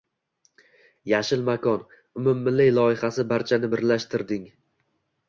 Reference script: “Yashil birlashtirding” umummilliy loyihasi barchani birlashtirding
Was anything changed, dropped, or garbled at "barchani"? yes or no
no